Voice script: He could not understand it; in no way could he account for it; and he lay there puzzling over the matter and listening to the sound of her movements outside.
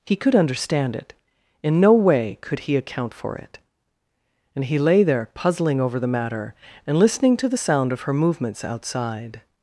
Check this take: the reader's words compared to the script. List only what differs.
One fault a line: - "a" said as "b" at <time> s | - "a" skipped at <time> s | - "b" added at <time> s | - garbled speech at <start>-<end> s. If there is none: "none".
- "not" skipped at 0.3 s